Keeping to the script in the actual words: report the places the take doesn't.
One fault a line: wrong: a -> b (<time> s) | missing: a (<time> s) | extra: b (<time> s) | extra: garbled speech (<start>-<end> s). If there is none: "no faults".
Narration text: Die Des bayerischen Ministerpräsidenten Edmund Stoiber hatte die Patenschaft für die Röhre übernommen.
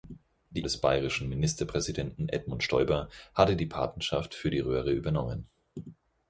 no faults